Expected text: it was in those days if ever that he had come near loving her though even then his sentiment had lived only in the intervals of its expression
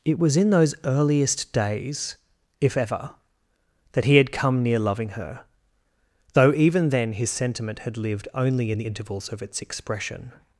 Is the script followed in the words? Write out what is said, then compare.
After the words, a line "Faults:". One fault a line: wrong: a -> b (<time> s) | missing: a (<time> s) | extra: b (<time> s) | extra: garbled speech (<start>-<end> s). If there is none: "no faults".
it was in those earliest days if ever that he had come near loving her though even then his sentiment had lived only in the intervals of its expression
Faults:
extra: earliest (0.8 s)